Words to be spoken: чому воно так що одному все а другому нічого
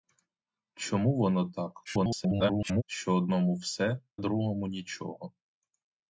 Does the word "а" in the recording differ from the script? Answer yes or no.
yes